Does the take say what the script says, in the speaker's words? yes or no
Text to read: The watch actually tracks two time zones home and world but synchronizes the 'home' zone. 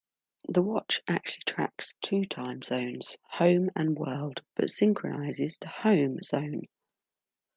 yes